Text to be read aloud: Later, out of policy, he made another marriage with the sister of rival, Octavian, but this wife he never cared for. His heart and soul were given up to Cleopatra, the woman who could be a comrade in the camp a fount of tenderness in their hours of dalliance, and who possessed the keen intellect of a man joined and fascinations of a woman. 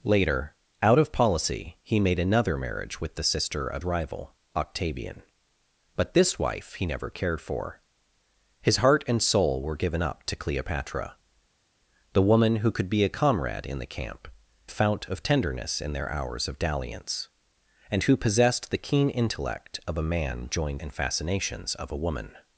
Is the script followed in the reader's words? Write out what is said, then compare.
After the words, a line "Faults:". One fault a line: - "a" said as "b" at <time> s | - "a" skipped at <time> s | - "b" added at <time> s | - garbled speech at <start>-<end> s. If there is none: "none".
Later, out of policy, he made another marriage with the sister of rival, Octavian, but this wife he never cared for. His heart and soul were given up to Cleopatra, the woman who could be a comrade in the camp a fount of tenderness in their hours of dalliance, and who possessed the keen intellect of a man joined and fascinations of a woman.
Faults:
none